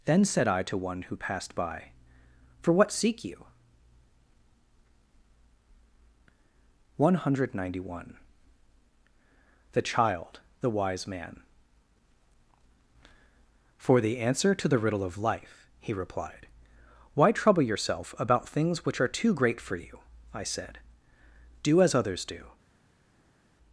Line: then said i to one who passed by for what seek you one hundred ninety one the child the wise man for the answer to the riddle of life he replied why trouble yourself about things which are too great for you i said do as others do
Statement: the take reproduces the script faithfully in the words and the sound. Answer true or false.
true